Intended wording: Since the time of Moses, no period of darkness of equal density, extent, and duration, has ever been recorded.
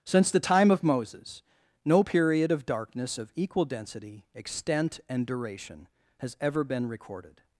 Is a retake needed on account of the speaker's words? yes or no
no